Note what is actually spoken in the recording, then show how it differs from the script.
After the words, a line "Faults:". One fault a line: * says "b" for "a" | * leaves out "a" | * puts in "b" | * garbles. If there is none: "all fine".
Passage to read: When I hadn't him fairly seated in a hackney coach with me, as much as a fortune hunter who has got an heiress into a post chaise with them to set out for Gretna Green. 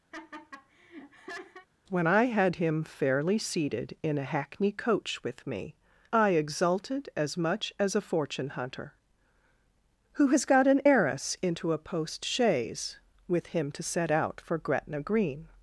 When I had him fairly seated in a hackney coach with me, I exulted as much as a fortune hunter who has got an heiress into a post chaise with him to set out for Gretna Green.
Faults:
* says "had" for "hadn't"
* puts in "I exulted"
* says "him" for "them"